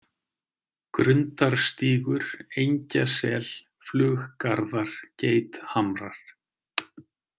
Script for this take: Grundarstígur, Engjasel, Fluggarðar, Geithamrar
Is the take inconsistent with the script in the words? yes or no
no